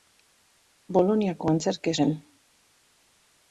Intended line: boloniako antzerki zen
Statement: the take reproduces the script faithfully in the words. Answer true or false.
true